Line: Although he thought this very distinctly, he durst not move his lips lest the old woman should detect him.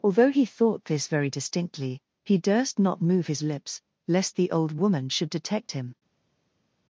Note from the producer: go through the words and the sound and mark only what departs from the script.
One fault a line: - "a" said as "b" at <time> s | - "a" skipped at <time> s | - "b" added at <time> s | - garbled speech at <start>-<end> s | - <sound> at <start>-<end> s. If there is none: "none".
none